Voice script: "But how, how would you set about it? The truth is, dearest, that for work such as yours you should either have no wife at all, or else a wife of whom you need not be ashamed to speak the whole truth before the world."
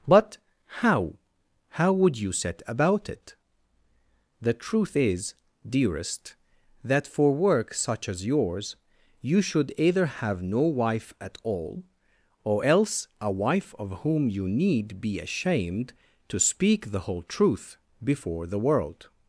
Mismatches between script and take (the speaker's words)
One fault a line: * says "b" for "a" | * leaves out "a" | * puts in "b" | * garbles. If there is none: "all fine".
* leaves out "not"